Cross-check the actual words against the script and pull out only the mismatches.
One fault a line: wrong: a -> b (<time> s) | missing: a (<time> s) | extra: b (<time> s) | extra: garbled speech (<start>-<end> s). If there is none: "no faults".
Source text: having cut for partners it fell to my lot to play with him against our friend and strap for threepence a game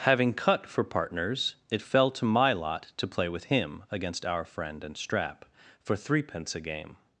no faults